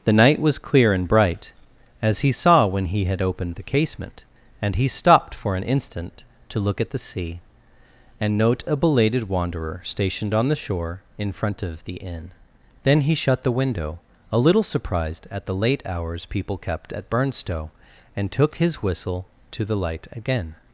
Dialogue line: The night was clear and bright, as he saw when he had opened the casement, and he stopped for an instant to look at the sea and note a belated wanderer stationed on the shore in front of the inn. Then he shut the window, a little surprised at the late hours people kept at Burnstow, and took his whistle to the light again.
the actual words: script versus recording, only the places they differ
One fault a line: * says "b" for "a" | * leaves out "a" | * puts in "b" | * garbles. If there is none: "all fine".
all fine